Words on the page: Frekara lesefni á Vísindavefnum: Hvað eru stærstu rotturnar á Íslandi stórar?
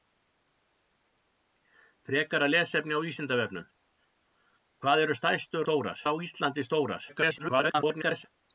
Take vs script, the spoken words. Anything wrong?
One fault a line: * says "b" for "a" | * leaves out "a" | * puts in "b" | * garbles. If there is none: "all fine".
* says "stórar" for "rotturnar"
* garbles